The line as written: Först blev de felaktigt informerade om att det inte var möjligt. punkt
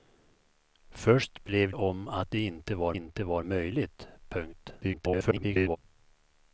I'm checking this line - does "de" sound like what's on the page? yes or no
no